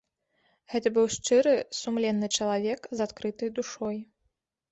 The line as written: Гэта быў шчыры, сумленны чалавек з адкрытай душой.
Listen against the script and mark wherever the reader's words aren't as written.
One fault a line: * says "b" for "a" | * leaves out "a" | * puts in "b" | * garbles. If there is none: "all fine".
all fine